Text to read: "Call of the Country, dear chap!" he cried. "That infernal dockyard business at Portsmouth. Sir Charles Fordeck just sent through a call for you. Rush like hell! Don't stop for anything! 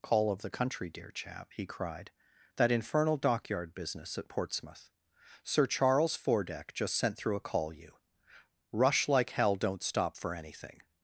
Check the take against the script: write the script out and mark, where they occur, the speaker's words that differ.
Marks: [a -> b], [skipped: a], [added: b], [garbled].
"Call of the Country, dear chap!" he cried. "That infernal dockyard business at Portsmouth. Sir Charles Fordeck just sent through a call [skipped: for] you. Rush like hell! Don't stop for anything!